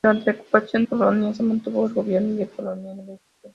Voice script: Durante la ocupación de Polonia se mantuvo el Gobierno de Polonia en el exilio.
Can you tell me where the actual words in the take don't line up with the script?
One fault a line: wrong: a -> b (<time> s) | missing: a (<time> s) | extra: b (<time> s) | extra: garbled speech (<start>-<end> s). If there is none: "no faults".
missing: de (0.8 s)